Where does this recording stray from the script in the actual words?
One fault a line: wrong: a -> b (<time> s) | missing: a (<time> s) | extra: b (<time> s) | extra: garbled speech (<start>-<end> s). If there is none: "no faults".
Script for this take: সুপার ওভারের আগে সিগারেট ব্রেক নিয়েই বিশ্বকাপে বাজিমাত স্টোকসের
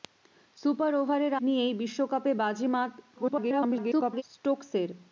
missing: আগে সিগারেট ব্রেক (1.3 s)
extra: garbled speech (3.2-4.2 s)